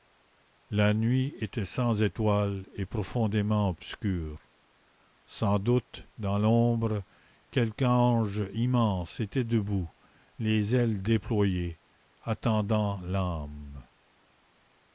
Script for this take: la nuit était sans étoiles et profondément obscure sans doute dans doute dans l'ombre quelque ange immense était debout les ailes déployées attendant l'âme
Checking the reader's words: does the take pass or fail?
fail